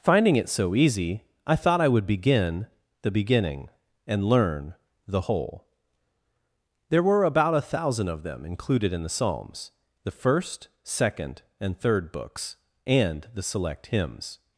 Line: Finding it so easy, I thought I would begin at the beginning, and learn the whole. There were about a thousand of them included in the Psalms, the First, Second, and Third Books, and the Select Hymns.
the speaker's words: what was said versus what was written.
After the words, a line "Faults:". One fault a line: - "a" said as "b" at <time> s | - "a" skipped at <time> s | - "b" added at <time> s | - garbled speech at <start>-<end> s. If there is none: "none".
Finding it so easy, I thought I would begin the beginning, and learn the whole. There were about a thousand of them included in the Psalms, the First, Second, and Third Books, and the Select Hymns.
Faults:
- "at" skipped at 2.6 s